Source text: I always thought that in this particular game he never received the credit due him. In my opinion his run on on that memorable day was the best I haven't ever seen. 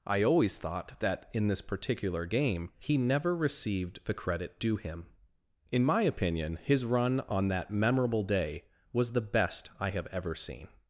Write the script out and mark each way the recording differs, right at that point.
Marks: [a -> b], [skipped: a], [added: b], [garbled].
I always thought that in this particular game he never received the credit due him. In my opinion his run on [skipped: on] that memorable day was the best I [haven't -> have] ever seen.